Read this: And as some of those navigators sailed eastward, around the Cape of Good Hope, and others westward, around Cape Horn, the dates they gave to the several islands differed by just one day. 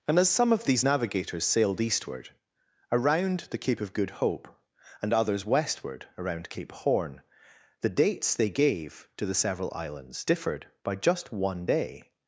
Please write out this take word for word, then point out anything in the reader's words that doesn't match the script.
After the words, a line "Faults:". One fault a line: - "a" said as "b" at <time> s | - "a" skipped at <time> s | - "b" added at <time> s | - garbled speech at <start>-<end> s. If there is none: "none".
And as some of these navigators sailed eastward, around the Cape of Good Hope, and others westward, around Cape Horn, the dates they gave to the several islands differed by just one day.
Faults:
- "those" said as "these" at 0.7 s